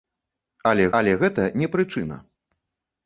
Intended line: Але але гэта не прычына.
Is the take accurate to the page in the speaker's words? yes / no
yes